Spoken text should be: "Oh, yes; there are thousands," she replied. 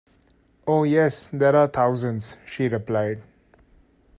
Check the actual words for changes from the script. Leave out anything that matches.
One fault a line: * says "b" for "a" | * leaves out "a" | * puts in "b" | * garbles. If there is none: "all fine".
all fine